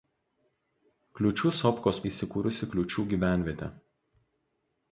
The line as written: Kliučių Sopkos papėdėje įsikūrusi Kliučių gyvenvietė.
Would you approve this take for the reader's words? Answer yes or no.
no